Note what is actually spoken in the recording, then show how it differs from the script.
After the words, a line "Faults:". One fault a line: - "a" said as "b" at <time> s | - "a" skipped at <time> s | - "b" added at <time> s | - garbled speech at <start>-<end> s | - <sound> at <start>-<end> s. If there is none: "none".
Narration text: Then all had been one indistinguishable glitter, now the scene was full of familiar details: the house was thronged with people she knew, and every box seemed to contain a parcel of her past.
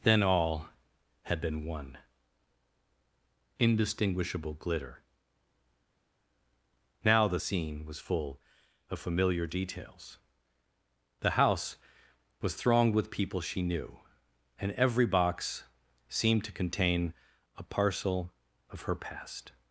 Then all had been one indistinguishable glitter, now the scene was full of familiar details: the house was thronged with people she knew, and every box seemed to contain a parcel of her past.
Faults:
none